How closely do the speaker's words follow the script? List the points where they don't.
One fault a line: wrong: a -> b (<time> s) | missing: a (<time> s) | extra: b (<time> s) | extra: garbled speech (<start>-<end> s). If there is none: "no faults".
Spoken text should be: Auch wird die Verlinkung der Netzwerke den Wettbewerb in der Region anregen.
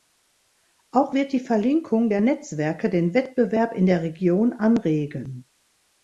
no faults